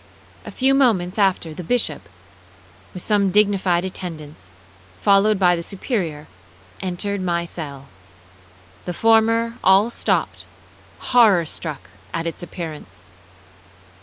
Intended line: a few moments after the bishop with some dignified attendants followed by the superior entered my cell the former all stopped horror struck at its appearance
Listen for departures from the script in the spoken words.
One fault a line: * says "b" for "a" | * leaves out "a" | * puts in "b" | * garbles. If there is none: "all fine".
all fine